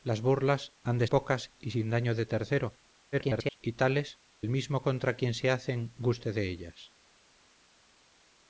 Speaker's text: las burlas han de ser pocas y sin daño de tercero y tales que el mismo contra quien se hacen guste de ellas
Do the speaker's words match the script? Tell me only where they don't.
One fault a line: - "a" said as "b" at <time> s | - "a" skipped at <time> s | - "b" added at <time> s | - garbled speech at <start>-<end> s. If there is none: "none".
- "ser" skipped at 1.1 s
- garbled speech at 3.1-3.6 s
- "que" skipped at 4.2 s